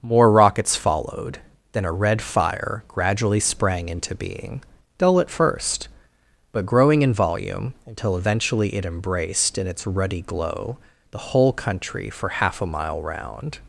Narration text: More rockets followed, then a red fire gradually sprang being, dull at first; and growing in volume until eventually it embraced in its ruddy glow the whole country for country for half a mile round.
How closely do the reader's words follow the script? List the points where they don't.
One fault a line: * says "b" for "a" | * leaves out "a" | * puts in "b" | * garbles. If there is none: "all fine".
* puts in "into"
* says "but" for "and"
* leaves out "country for"